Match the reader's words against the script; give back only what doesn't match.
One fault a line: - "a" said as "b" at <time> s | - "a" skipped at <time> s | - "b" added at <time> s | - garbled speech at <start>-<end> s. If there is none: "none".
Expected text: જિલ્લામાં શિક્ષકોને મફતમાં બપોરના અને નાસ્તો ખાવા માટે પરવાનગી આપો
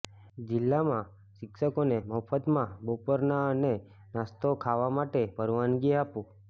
none